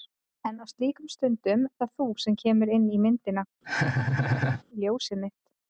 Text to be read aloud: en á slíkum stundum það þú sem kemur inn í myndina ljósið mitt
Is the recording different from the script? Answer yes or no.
no